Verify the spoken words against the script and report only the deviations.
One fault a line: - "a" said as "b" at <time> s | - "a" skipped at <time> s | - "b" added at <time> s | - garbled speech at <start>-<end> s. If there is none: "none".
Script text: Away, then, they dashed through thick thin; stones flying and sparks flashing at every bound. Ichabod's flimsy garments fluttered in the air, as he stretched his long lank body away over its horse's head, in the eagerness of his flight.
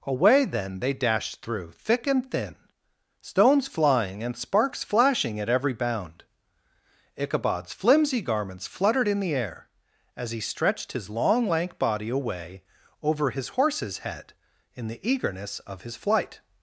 - "and" added at 2.1 s
- "its" said as "his" at 13.3 s